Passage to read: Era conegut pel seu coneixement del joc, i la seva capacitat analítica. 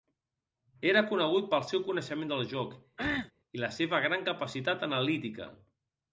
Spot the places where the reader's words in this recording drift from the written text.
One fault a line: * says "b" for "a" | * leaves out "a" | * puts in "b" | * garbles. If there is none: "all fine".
* puts in "gran"